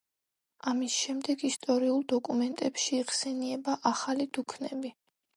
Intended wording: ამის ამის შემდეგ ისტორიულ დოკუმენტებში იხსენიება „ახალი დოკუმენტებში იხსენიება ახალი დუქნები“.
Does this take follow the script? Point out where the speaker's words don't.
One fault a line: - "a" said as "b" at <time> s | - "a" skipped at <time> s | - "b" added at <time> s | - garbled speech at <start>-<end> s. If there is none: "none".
- "ამის" skipped at 0.9 s
- "დოკუმენტებში იხსენიება ახალი" skipped at 4.3 s